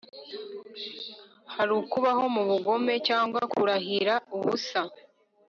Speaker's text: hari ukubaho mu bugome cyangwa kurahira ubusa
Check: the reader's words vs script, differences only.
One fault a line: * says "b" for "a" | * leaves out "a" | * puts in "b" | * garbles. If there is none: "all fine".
all fine